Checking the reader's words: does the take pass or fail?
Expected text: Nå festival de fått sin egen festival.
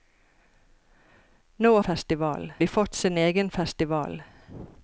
pass